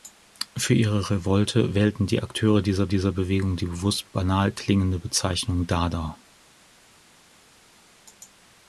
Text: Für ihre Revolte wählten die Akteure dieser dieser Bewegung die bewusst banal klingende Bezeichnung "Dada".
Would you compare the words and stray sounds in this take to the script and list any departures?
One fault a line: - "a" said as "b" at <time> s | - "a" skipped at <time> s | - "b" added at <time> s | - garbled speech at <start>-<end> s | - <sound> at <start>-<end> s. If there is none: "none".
none